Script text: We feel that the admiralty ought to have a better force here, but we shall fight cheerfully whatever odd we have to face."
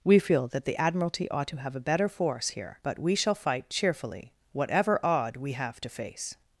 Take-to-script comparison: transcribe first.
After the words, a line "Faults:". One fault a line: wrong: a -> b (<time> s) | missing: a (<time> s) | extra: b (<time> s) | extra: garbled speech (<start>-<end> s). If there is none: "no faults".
We feel that the admiralty ought to have a better force here, but we shall fight cheerfully whatever odd we have to face."
Faults:
no faults